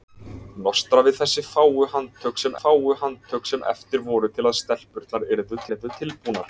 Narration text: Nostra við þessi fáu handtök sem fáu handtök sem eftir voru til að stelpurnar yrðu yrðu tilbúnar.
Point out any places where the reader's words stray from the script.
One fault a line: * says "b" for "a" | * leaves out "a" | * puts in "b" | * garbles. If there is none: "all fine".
all fine